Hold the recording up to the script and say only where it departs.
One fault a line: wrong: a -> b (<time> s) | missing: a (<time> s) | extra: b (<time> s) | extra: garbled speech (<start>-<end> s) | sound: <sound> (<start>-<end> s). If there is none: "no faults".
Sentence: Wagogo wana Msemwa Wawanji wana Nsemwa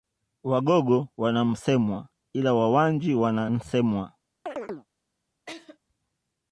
extra: ila (2.3 s)
sound: chirp (4.5-4.9 s)
sound: laugh (5.5-5.8 s)